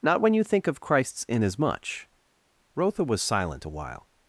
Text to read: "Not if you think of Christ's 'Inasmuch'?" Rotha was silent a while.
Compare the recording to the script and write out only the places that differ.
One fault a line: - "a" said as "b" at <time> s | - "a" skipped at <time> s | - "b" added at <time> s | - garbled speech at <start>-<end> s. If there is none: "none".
- "if" said as "when" at 0.2 s